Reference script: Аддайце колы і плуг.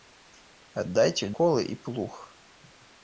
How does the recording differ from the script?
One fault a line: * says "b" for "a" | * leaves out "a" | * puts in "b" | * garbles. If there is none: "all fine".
all fine